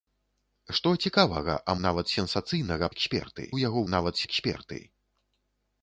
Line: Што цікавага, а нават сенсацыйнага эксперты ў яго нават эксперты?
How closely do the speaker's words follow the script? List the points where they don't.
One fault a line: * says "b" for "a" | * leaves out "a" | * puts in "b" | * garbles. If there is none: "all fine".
all fine